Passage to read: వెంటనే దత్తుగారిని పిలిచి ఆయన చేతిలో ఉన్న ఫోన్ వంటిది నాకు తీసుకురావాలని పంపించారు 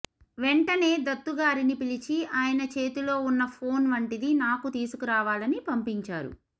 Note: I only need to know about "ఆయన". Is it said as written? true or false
true